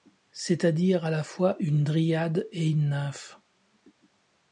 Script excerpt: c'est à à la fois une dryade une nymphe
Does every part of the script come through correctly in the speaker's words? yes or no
no